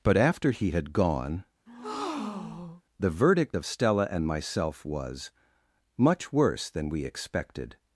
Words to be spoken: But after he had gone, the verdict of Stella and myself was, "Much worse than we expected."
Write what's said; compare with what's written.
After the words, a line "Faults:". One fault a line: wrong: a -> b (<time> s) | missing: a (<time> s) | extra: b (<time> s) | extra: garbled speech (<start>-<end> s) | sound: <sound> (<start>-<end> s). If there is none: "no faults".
But after he had gone, the verdict of Stella and myself was, "Much worse than we expected."
Faults:
sound: breath (1.7-2.8 s)